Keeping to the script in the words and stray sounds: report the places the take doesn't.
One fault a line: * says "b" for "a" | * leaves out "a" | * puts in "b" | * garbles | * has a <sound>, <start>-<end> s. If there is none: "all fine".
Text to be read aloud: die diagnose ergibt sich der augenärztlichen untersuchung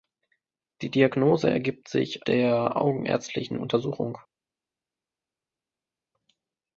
all fine